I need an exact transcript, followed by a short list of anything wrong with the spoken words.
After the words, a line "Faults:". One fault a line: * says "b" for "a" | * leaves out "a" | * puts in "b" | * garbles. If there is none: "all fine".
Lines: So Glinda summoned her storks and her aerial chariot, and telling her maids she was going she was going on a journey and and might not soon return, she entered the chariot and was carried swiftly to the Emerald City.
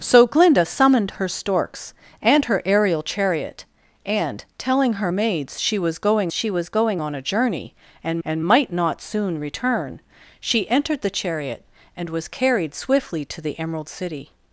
So Glinda summoned her storks and her aerial chariot, and telling her maids she was going she was going on a journey and and might not soon return, she entered the chariot and was carried swiftly to the Emerald City.
Faults:
all fine